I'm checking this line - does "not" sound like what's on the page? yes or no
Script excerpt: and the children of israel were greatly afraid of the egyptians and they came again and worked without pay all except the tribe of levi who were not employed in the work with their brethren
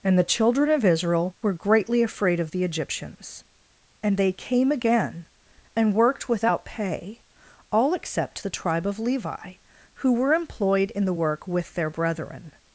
no